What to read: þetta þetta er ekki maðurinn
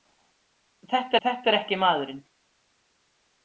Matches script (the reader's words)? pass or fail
pass